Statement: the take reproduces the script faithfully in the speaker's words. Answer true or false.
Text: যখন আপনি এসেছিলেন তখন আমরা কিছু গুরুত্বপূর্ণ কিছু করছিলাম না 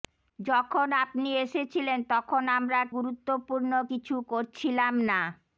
false